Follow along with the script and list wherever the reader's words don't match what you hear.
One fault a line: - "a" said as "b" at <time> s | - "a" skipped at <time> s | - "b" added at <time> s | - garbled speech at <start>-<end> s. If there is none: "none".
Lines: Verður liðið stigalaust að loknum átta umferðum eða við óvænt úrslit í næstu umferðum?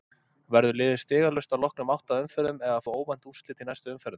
none